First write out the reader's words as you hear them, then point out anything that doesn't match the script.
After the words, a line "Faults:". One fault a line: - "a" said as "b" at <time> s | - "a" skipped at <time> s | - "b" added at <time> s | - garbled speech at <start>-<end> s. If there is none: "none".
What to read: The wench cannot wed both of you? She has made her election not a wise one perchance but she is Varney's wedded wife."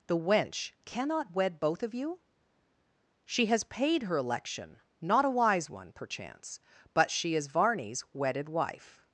The wench cannot wed both of you? She has paid her election not a wise one perchance but she is Varney's wedded wife."
Faults:
- "made" said as "paid" at 3.6 s